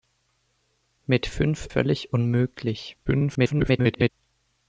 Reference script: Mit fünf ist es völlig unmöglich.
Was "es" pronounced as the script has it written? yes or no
no